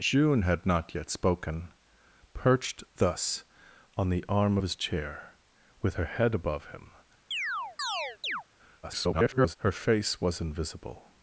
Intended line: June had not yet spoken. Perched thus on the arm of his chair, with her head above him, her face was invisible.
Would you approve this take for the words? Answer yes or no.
no